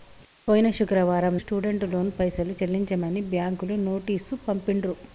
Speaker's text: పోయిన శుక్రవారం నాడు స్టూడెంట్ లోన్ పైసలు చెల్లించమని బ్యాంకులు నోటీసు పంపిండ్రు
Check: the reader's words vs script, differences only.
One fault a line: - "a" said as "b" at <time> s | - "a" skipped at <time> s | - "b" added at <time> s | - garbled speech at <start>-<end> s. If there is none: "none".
- "నాడు" skipped at 1.4 s